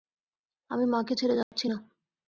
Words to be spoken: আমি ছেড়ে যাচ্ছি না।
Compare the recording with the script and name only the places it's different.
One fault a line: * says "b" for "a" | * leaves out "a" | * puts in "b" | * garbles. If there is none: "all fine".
* puts in "মাকে"